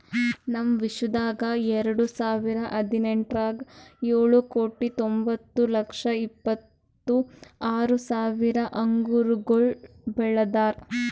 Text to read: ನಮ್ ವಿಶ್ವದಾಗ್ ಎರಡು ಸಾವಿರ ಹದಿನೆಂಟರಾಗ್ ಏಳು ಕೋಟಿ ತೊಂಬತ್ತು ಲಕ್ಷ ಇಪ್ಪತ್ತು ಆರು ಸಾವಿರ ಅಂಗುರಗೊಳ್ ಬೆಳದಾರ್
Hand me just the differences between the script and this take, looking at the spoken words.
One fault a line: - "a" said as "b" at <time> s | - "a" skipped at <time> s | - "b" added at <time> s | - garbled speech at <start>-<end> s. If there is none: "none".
none